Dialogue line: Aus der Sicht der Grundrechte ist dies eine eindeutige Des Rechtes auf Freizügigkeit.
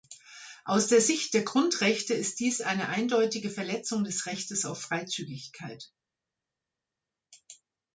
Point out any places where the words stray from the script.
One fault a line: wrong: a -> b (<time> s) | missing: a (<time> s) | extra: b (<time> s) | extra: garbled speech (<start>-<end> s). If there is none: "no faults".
extra: Verletzung (3.5 s)